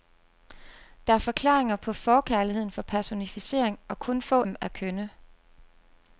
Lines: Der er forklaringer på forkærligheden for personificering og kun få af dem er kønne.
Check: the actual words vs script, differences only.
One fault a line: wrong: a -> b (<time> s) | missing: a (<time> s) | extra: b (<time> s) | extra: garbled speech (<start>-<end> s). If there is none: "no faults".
missing: af (4.4 s)